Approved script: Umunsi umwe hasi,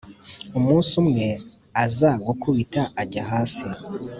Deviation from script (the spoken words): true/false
true